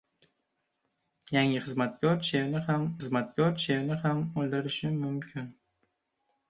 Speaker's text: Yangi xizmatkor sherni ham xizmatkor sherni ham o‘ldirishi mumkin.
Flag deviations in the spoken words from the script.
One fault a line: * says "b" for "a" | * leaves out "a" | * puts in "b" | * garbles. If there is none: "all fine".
all fine